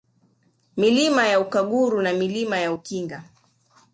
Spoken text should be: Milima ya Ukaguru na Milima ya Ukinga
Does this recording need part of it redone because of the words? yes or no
no